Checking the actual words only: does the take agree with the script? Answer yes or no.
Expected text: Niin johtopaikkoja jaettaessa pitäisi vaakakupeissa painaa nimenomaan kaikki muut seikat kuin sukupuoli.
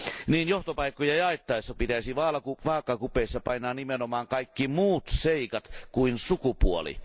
yes